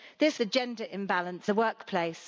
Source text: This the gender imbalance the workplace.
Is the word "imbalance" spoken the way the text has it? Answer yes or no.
yes